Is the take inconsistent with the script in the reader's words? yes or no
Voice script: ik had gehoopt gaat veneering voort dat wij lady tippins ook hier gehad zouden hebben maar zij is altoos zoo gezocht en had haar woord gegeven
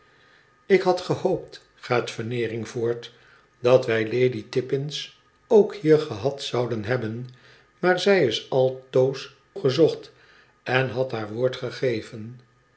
yes